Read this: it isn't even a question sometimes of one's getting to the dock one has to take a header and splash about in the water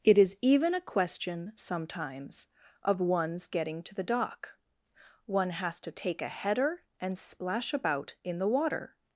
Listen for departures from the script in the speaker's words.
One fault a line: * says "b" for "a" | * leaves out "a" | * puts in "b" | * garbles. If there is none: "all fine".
* says "is" for "isn't"